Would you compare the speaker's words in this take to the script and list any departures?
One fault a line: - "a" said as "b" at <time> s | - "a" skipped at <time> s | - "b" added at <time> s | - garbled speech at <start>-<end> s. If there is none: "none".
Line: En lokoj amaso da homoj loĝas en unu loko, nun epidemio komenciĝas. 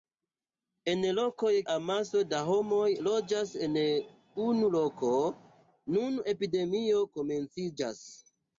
none